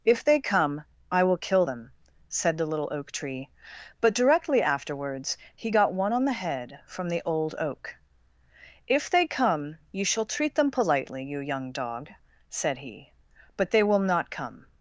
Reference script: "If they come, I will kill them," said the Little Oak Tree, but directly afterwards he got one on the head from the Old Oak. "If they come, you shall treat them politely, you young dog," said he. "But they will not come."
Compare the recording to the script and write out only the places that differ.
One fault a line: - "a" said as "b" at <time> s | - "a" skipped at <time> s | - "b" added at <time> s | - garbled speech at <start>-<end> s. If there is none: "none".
none